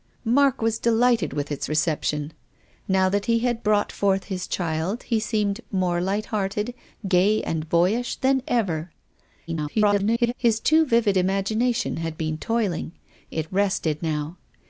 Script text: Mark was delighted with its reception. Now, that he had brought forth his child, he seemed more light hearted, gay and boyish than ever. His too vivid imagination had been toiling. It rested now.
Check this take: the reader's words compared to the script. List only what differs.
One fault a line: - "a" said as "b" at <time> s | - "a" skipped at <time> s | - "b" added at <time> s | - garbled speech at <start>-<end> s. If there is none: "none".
- garbled speech at 9.5-10.3 s